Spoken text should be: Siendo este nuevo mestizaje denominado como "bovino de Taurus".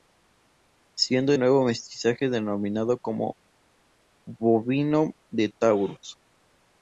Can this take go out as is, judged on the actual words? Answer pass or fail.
fail